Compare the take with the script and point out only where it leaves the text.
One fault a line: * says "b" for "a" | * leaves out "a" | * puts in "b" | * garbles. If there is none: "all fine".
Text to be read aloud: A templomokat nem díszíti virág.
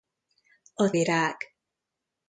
* leaves out "templomokat nem díszíti"